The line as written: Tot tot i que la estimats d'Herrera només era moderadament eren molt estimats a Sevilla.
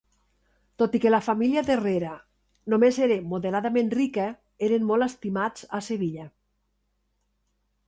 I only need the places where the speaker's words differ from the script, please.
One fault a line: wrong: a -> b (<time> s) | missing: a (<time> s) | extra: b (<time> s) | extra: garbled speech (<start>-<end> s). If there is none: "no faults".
missing: tot (0.9 s)
wrong: estimats -> família (1.2 s)
extra: rica (4.0 s)